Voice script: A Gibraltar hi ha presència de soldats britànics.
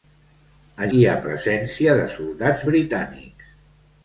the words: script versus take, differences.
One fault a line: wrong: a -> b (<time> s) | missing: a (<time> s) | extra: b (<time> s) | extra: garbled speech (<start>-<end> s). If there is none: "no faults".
missing: Gibraltar (0.9 s)